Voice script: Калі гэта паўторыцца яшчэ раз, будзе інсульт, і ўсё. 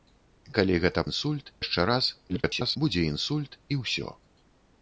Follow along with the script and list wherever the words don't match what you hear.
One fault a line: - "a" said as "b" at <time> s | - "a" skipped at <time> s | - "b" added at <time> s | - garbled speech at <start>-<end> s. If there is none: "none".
- "паўторыцца" said as "інсульт" at 1.1 s
- garbled speech at 2.3-2.8 s